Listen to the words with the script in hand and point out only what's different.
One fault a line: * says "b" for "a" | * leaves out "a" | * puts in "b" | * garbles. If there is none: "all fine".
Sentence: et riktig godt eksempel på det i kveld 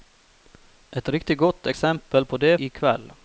all fine